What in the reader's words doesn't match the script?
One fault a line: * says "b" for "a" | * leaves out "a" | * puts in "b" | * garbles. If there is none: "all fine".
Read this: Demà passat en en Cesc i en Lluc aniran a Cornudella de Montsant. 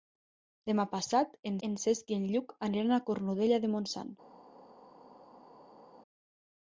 all fine